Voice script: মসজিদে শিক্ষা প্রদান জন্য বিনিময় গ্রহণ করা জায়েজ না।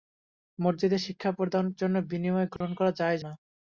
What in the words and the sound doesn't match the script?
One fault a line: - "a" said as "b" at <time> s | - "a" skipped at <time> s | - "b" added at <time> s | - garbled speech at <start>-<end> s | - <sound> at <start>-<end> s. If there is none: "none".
- dropout at 2.6-2.6 s